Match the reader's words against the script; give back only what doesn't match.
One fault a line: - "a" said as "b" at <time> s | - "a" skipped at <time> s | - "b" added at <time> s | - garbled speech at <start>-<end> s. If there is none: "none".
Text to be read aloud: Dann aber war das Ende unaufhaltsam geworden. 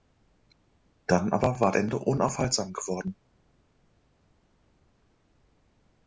- "das" skipped at 1.7 s